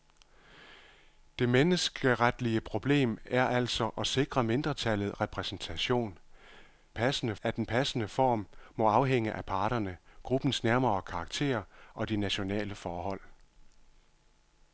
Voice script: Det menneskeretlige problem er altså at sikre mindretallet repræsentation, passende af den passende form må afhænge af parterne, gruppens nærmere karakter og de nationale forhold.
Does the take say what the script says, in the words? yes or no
yes